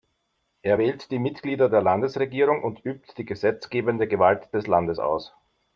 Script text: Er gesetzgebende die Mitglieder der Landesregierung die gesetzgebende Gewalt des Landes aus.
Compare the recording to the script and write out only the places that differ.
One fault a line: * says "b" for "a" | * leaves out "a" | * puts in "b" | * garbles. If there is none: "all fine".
* says "wählt" for "gesetzgebende"
* puts in "und übt"